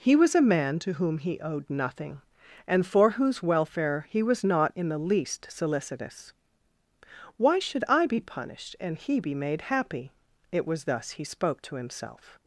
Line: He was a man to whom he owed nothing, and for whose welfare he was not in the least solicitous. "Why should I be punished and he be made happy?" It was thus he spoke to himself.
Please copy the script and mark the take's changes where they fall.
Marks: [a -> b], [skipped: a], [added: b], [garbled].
He was a man to whom he owed nothing, and for whose welfare he was not in the least solicitous. "Why should I be punished and he be made happy?" It was thus he spoke to himself.